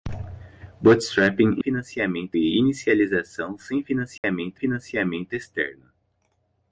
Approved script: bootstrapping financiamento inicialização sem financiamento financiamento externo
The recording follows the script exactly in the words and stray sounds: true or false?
false